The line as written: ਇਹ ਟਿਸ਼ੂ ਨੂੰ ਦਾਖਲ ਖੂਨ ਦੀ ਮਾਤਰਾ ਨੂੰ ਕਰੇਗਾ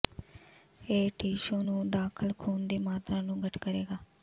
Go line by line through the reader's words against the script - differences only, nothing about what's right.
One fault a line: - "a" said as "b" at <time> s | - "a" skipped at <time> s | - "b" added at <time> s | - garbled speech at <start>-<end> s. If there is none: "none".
- "ਘੱਟ" added at 3.4 s